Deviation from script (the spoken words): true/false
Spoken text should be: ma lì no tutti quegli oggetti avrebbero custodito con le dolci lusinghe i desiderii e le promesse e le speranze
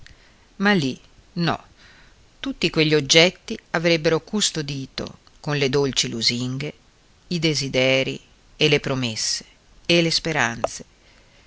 false